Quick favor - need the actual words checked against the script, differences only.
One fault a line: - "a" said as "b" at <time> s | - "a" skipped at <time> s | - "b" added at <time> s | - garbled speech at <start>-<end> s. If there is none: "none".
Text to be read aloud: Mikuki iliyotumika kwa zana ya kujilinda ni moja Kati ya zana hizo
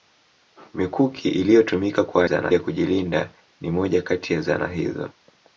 none